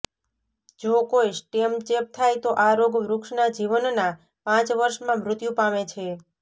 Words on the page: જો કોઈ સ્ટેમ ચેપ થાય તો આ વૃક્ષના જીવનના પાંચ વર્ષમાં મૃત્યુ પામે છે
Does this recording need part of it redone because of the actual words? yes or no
yes